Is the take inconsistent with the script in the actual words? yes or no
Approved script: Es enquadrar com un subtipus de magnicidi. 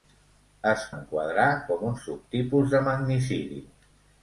no